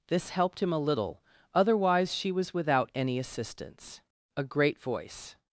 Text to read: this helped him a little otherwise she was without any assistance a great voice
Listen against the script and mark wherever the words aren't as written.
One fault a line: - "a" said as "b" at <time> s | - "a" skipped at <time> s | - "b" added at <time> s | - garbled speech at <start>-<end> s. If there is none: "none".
none